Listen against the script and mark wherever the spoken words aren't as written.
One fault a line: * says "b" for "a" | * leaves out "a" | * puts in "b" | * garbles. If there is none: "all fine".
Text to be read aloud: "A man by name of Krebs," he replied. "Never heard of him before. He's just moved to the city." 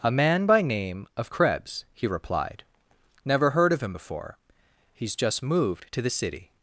all fine